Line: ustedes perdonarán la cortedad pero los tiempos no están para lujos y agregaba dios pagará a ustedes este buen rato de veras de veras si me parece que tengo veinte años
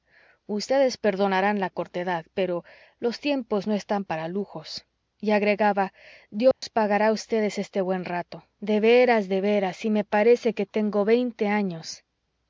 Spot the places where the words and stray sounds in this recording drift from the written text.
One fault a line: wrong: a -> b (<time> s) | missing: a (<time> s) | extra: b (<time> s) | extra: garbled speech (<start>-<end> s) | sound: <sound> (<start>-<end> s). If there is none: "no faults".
sound: dropout (6.5-6.6 s)